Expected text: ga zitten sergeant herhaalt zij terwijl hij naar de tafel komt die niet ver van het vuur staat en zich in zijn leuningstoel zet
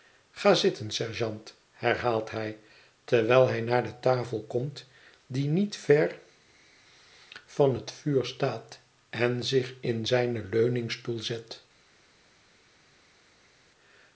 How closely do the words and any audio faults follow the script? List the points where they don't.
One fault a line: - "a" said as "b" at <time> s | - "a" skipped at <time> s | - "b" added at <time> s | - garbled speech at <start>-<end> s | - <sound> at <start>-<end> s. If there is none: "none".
- "zij" said as "hij" at 2.3 s